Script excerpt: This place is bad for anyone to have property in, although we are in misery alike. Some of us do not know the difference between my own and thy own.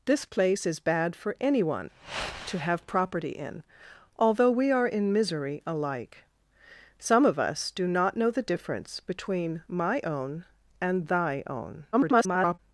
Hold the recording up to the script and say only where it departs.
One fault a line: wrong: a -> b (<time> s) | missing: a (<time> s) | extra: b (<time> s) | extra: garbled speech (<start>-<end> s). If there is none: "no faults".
extra: garbled speech (11.9-12.6 s)